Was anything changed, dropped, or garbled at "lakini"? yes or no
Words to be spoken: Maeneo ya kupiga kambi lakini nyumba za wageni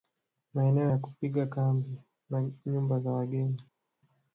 yes